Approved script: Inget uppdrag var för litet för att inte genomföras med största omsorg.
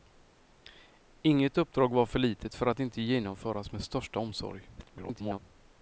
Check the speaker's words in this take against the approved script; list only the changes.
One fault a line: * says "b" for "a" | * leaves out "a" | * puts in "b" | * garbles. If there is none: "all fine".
* garbles